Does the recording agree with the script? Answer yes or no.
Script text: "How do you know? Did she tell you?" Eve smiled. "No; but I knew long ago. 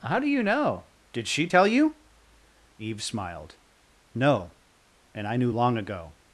no